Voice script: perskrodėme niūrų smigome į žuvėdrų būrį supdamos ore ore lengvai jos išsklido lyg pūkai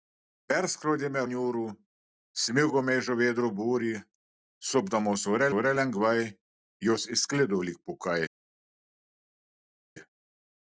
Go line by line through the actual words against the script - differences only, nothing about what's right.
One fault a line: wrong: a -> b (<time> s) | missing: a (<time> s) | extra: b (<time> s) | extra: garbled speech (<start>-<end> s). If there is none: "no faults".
no faults